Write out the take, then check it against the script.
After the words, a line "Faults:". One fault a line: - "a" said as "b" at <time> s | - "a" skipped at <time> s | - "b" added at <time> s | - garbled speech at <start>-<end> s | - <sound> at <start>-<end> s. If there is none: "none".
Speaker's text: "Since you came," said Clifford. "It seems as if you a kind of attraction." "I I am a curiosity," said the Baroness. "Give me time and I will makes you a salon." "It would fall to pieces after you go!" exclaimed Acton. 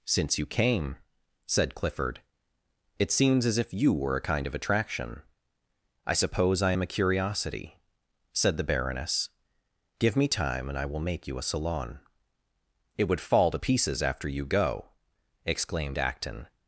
"Since you came," said Clifford. "It seems as if you were a kind of attraction." "I suppose I am a curiosity," said the Baroness. "Give me time and I will make you a salon." "It would fall to pieces after you go!" exclaimed Acton.
Faults:
- "were" added at 3.9 s
- "suppose" added at 6.1 s
- "makes" said as "make" at 11.0 s